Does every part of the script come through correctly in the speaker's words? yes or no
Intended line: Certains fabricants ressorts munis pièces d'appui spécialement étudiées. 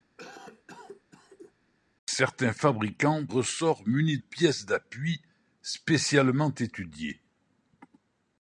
yes